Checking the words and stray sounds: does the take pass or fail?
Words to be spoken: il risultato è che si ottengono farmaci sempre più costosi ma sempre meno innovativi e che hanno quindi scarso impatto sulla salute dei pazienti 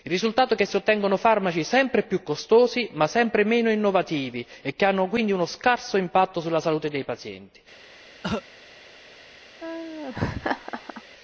fail